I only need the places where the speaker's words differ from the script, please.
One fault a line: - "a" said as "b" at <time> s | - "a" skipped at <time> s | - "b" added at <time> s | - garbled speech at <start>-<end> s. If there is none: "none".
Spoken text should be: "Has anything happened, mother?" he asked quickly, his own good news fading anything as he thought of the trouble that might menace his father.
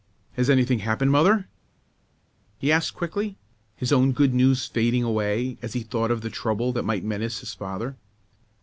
- "anything" said as "away" at 5.0 s